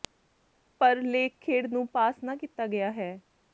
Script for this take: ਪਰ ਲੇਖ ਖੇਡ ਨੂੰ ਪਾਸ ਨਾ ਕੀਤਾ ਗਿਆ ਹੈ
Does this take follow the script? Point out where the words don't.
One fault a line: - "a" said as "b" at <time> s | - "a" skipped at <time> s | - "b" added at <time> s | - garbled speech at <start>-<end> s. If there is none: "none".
none